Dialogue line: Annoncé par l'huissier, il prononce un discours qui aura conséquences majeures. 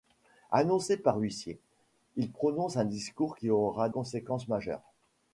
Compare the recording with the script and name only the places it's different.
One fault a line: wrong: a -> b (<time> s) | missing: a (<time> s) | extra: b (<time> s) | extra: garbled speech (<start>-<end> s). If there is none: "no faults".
no faults